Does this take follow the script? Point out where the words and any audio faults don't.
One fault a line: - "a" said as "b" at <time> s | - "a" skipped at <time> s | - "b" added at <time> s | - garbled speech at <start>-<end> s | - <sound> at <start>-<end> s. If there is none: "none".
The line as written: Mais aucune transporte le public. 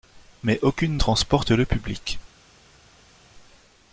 none